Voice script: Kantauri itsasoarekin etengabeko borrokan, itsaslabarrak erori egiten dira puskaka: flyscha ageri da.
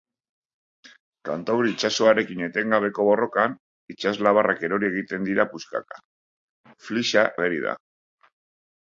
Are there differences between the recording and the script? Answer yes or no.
no